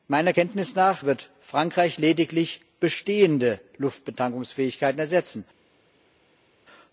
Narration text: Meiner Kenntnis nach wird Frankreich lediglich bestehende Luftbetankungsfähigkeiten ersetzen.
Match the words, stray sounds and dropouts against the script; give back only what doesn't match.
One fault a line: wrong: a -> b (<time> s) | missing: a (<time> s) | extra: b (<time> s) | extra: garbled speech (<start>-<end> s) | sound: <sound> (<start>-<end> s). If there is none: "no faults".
no faults